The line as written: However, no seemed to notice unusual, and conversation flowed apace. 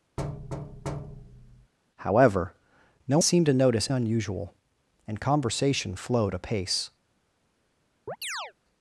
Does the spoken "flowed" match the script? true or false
true